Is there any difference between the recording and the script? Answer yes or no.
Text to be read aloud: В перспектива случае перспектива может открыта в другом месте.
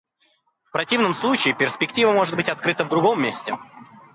yes